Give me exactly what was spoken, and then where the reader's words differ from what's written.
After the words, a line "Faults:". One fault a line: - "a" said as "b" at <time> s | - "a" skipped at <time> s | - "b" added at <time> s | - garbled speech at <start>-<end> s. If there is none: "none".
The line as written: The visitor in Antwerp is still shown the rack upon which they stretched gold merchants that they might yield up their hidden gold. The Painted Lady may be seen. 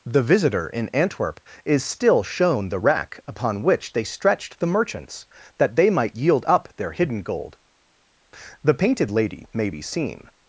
The visitor in Antwerp is still shown the rack upon which they stretched the merchants that they might yield up their hidden gold. The Painted Lady may be seen.
Faults:
- "gold" said as "the" at 4.6 s